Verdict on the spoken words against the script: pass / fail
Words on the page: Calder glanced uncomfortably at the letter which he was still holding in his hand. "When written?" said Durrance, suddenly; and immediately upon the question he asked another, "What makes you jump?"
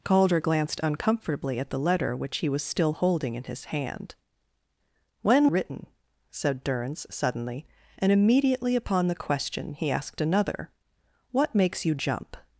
pass